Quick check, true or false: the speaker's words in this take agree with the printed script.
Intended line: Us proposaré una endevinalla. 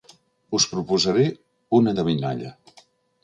true